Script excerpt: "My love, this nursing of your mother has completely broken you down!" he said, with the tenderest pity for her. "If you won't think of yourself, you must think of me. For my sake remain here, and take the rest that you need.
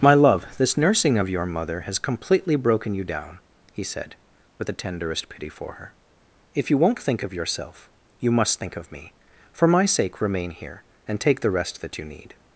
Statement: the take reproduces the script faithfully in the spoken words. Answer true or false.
true